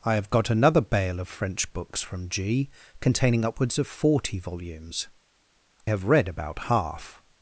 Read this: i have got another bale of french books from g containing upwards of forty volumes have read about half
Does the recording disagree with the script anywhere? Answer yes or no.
no